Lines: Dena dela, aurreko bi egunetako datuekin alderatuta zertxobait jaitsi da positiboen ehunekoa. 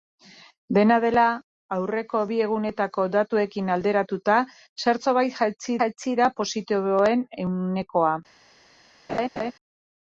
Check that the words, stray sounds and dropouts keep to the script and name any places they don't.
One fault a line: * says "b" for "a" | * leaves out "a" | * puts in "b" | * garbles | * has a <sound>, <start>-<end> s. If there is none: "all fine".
* puts in "jaitsi"
* has a laugh, 9.1-9.5 s